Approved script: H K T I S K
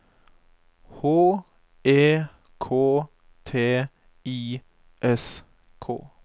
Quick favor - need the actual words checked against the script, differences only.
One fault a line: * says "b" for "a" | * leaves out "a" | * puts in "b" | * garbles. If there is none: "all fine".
* puts in "E"